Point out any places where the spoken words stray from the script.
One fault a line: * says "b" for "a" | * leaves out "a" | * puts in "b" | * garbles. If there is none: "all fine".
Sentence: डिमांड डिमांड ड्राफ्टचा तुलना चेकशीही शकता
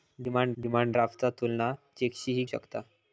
all fine